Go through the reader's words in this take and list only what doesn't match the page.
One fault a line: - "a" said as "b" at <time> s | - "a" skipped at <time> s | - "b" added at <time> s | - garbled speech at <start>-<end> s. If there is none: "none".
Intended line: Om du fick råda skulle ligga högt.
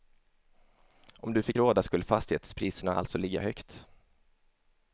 - "fastighetspriserna alltså" added at 2.0 s